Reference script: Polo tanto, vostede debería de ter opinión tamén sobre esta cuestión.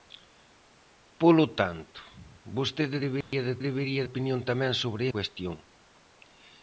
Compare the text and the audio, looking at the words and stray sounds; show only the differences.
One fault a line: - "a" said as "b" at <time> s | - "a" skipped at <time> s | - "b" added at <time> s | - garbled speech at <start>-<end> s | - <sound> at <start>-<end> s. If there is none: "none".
- dropout at 3.2-3.3 s
- "ter" said as "debería" at 3.7 s
- "esta" skipped at 5.0 s